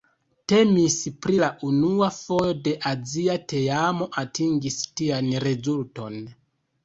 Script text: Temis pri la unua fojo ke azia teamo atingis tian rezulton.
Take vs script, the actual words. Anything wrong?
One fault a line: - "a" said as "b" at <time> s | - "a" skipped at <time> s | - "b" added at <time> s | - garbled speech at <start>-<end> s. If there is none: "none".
none